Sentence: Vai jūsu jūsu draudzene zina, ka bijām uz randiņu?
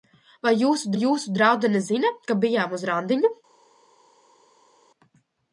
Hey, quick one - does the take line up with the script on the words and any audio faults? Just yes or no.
yes